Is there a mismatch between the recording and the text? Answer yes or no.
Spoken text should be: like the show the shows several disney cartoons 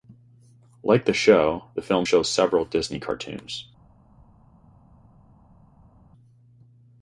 yes